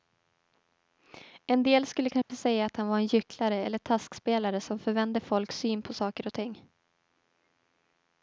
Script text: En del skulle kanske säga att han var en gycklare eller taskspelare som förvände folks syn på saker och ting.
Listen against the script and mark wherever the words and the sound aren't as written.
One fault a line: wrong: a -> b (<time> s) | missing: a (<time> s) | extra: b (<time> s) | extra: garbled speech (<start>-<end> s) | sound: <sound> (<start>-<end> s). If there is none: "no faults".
sound: dropout (2.2-2.3 s)